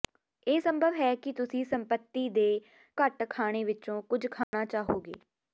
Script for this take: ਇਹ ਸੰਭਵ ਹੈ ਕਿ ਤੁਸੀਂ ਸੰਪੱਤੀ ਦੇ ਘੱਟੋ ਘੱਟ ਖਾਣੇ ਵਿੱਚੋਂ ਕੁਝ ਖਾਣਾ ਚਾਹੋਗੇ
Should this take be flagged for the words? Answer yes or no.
yes